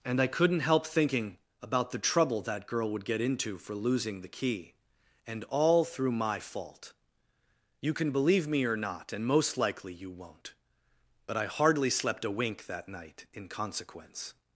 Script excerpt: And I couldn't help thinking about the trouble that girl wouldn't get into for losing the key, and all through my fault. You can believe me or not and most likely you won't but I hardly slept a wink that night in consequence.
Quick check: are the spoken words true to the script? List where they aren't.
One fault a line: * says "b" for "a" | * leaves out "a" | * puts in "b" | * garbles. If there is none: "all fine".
* says "would" for "wouldn't"